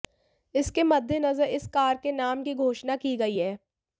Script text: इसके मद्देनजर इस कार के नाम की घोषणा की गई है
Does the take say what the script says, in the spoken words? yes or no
yes